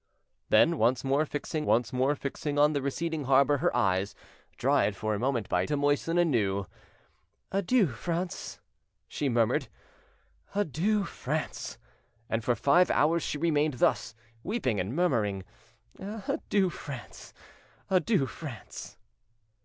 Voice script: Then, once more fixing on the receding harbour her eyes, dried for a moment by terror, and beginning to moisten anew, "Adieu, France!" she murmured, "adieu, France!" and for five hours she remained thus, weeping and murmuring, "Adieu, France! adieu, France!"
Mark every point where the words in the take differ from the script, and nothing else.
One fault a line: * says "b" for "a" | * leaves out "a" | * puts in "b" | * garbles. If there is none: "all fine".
* puts in "once more fixing"
* leaves out "terror and beginning"